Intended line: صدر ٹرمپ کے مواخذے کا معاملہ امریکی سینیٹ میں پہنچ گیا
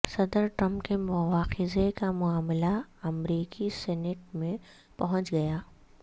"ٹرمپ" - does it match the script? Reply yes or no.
yes